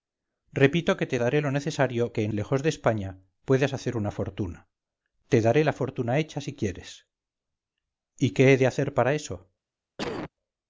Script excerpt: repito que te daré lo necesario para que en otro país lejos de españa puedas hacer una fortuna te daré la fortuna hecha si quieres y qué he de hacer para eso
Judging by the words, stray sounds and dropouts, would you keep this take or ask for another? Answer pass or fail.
fail